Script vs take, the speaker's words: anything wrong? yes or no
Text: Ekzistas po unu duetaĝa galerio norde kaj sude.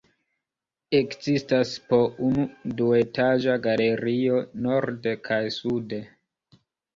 no